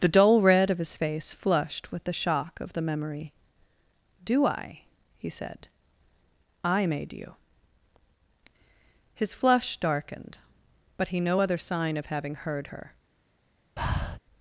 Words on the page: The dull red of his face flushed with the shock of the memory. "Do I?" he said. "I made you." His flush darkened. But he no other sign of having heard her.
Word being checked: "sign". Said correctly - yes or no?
yes